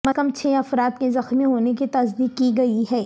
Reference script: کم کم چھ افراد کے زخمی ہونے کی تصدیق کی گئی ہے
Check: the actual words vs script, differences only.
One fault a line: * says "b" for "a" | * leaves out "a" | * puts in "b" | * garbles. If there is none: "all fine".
all fine